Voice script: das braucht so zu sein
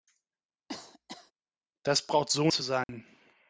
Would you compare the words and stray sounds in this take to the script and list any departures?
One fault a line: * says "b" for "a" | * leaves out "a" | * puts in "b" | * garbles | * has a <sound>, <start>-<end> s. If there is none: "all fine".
* has a cough, 0.7-1.3 s
* has a dropout, 2.8-2.9 s